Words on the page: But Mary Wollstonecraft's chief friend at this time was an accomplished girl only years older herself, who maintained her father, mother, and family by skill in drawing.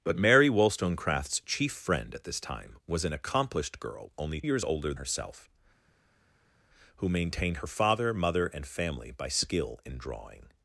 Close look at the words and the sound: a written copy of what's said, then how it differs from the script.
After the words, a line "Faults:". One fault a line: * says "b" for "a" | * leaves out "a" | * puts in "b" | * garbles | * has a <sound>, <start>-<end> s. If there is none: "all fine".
But Mary Wollstonecraft's chief friend at this time was an accomplished girl only years older herself, who maintained her father, mother, and family by skill in drawing.
Faults:
all fine